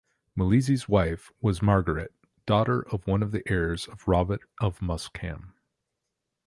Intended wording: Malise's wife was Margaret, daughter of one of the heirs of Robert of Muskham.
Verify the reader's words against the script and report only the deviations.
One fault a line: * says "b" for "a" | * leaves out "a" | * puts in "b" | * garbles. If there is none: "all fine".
all fine